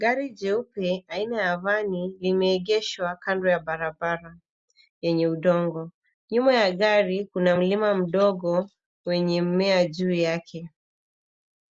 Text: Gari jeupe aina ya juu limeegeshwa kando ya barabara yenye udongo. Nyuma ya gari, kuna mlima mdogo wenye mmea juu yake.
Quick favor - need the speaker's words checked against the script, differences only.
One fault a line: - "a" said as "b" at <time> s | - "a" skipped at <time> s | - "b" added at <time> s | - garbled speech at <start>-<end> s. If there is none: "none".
- "juu" said as "vani" at 1.6 s